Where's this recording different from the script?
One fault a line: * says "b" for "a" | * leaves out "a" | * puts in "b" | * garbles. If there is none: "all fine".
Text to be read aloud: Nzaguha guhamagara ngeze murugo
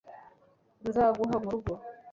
* leaves out "guhamagara ngeze"